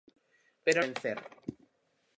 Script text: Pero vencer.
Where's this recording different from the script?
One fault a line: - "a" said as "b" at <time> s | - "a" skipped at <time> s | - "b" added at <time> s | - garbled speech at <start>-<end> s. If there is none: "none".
none